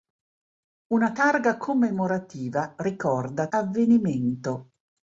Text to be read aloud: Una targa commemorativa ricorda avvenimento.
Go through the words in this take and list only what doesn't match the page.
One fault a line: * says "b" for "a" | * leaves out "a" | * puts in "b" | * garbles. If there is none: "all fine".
all fine